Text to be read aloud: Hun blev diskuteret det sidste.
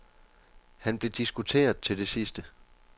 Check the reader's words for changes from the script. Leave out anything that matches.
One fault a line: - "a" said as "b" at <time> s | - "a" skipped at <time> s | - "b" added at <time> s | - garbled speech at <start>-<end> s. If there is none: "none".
- "Hun" said as "Han" at 0.8 s
- "til" added at 1.8 s